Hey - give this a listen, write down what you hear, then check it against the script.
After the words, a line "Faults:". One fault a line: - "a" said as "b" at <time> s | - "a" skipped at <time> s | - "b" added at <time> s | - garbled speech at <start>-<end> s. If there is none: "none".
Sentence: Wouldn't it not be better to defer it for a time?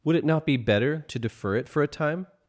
Would it not be better to defer it for a time?
Faults:
- "Wouldn't" said as "Would" at 0.0 s